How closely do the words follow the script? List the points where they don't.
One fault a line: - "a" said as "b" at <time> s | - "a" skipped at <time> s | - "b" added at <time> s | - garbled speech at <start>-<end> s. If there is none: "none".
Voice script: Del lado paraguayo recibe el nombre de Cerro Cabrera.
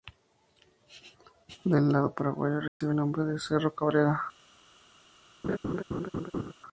none